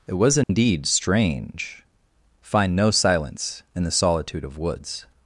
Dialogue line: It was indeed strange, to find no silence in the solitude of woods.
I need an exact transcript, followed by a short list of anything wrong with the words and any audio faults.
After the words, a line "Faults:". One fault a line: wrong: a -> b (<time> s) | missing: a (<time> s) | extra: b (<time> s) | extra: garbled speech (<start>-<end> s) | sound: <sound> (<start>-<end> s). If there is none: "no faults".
It was indeed strange, find no silence in the solitude of woods.
Faults:
sound: dropout (0.4-0.5 s)
missing: to (1.8 s)